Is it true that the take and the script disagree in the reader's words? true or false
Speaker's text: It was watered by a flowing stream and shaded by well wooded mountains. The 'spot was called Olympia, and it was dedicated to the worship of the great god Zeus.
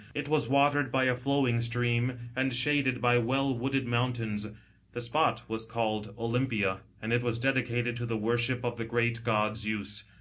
false